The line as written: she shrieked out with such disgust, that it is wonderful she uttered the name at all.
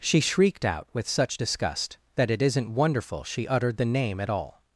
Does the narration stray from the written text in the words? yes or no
yes